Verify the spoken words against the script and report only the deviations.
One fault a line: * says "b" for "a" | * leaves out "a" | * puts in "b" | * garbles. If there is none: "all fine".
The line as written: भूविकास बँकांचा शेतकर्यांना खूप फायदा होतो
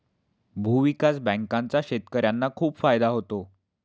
all fine